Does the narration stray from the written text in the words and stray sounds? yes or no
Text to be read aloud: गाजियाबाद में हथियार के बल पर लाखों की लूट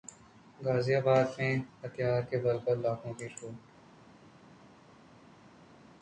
no